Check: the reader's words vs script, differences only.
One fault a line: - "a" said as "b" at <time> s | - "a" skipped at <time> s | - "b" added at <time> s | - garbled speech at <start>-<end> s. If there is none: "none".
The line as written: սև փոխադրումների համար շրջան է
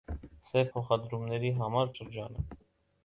none